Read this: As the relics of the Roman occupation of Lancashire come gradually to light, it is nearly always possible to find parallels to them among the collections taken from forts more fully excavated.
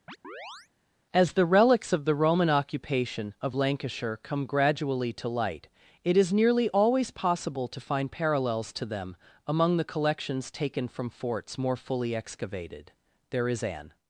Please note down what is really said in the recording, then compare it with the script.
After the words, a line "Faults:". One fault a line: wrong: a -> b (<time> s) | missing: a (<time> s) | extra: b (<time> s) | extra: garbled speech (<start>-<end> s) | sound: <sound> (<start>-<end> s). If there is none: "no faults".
As the relics of the Roman occupation of Lancashire come gradually to light, it is nearly always possible to find parallels to them among the collections taken from forts more fully excavated. There is an
Faults:
sound: chirp (0.1-0.7 s)
extra: There is an (13.3 s)